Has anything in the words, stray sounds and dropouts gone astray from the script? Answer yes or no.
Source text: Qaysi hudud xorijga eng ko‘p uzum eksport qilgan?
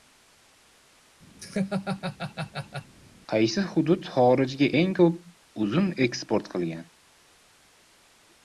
yes